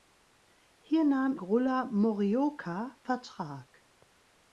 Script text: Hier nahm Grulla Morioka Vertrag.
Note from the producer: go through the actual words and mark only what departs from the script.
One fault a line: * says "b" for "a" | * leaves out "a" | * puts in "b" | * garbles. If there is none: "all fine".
all fine